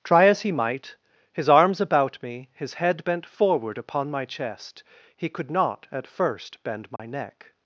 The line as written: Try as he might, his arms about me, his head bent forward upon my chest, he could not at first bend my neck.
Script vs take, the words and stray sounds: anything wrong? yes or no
yes